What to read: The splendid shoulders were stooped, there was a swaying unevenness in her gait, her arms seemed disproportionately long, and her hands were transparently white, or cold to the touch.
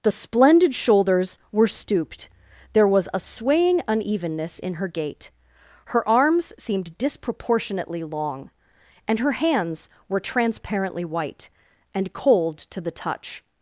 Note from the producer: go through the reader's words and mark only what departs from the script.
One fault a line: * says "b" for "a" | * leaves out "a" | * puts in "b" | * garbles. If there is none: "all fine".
* says "and" for "or"